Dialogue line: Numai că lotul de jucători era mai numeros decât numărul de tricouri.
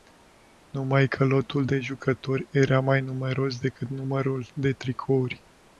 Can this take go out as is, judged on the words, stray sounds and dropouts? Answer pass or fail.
pass